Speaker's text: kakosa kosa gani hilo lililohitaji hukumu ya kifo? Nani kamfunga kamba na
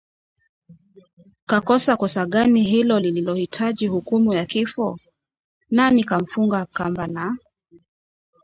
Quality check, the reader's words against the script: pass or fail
pass